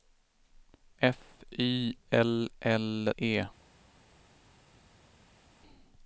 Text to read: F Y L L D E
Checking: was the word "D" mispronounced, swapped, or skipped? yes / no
yes